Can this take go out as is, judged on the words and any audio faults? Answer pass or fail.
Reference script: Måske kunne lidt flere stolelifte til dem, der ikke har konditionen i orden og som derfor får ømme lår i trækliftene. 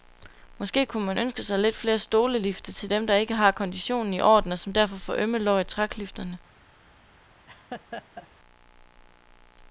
fail